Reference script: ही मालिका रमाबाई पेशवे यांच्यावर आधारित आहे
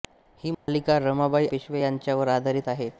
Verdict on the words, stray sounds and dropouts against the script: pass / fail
fail